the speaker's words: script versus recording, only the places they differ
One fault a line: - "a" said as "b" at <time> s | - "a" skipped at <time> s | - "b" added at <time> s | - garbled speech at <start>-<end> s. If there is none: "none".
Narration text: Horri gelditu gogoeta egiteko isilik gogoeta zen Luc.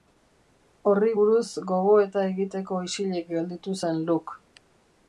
- "gelditu" said as "buruz" at 1.2 s
- "gogoeta" said as "gelditu" at 3.4 s